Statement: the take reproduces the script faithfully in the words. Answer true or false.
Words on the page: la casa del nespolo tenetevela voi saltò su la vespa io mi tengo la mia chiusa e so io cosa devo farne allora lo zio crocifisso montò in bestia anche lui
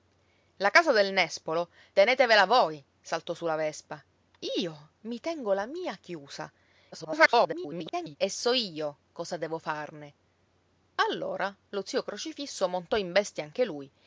false